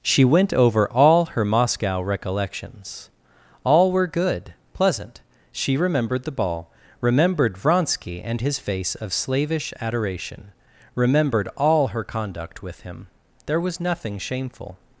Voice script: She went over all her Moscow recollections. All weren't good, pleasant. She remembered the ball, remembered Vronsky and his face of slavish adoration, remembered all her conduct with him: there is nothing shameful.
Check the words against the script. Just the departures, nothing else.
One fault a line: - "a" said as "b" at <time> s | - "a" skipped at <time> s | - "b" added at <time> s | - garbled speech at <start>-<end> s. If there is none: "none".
- "weren't" said as "were" at 3.9 s
- "is" said as "was" at 13.6 s